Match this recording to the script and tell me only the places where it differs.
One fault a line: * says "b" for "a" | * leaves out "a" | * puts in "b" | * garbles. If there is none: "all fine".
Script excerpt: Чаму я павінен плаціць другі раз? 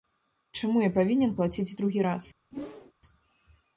all fine